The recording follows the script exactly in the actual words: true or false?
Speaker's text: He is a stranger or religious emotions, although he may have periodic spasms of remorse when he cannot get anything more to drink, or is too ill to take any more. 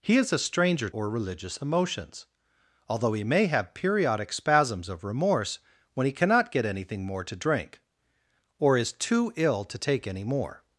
true